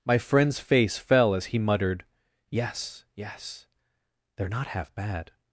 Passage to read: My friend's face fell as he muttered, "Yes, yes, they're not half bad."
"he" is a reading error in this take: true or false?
false